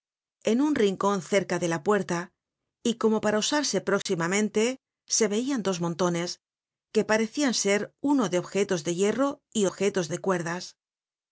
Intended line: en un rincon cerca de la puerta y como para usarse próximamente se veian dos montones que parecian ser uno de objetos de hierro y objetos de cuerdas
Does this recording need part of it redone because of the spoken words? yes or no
no